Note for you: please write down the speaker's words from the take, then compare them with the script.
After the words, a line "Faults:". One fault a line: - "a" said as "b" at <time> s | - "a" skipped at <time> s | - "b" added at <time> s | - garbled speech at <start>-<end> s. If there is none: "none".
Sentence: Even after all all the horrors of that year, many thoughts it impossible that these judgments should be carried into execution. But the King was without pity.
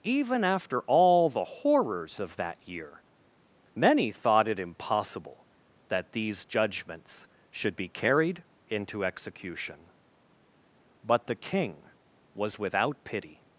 Even after all the horrors of that year, many thought it impossible that these judgments should be carried into execution. But the King was without pity.
Faults:
- "all" skipped at 1.3 s
- "thoughts" said as "thought" at 4.1 s